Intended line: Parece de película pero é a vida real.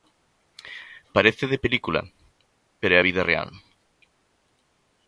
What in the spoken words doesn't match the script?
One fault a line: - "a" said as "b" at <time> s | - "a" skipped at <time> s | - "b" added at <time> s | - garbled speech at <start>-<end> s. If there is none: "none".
none